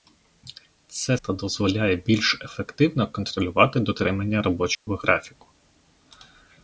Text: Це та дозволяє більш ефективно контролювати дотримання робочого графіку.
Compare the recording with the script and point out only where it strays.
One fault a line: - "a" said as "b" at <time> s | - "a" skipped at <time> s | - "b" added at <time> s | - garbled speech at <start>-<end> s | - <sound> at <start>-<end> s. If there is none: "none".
- dropout at 4.7-4.9 s